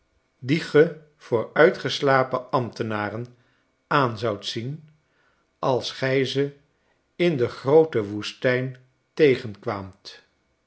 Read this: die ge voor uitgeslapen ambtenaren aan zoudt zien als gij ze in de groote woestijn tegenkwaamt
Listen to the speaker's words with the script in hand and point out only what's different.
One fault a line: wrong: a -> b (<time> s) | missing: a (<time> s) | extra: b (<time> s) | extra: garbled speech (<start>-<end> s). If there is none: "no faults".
no faults